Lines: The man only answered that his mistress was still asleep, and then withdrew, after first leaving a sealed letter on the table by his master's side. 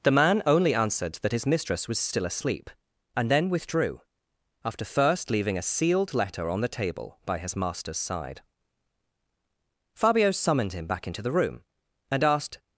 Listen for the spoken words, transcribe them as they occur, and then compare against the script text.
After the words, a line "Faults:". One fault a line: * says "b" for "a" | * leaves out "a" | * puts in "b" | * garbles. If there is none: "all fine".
The man only answered that his mistress was still asleep, and then withdrew, after first leaving a sealed letter on the table by his master's side. Fabio summoned him back into the room, and asked
Faults:
* puts in "Fabio summoned him back into the room and asked"